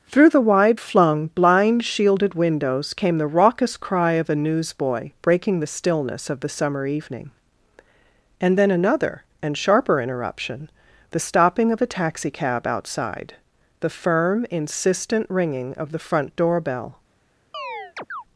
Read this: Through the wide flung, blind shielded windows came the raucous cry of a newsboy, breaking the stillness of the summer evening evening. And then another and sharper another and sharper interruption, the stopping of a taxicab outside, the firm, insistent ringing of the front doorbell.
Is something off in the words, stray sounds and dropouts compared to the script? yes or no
yes